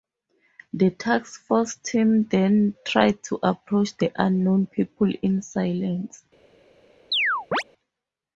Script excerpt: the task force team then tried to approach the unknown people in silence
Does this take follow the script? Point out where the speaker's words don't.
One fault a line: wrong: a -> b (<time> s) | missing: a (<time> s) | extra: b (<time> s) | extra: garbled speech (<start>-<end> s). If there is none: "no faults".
no faults